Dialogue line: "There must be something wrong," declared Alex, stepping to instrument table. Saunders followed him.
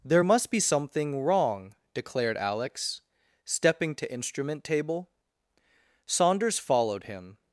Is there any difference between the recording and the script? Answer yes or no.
no